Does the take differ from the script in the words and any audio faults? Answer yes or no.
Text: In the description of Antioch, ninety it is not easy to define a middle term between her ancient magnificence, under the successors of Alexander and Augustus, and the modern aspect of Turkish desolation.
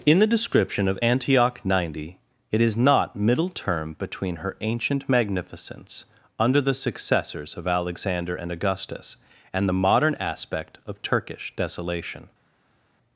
yes